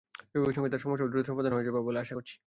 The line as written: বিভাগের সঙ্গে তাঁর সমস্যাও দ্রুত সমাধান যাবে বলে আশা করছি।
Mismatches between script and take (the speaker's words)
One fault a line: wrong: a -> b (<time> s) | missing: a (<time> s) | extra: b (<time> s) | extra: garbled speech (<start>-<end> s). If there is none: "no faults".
extra: হয়ে (1.5 s)